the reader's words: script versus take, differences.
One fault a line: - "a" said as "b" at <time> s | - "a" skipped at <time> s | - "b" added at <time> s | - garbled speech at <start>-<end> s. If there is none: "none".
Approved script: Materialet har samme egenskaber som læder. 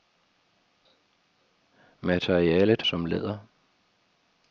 - "har samme egenskaber" skipped at 2.8 s